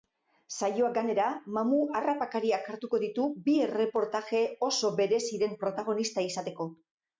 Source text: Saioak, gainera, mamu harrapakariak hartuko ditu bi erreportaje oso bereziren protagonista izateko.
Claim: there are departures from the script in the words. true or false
false